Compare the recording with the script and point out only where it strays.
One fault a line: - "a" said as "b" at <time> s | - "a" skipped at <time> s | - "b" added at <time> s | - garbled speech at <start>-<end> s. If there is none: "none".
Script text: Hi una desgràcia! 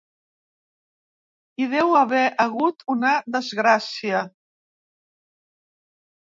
- "deu haver hagut" added at 1.7 s